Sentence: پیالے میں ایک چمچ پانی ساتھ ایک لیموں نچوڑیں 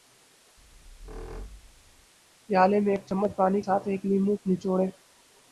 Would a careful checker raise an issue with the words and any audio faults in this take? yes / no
yes